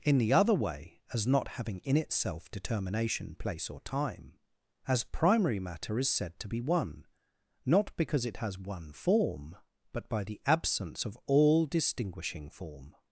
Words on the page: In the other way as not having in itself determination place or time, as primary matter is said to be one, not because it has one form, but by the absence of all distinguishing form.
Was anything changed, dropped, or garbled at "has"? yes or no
no